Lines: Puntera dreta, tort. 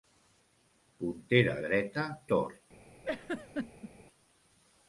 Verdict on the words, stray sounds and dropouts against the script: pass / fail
fail